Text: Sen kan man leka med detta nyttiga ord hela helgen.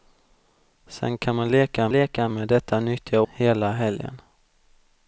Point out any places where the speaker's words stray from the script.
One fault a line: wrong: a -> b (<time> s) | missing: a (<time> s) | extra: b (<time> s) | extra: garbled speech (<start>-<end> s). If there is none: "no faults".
extra: leka (1.9 s)
missing: ord (3.2 s)